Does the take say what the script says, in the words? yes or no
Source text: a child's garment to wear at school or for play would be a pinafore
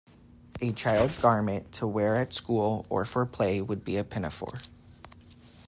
yes